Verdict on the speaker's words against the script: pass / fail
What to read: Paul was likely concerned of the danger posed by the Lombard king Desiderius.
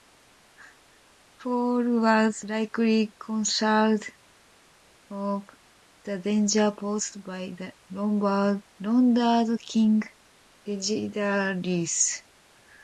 pass